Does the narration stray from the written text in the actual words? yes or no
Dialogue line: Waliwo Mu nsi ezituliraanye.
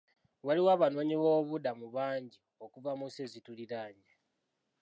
yes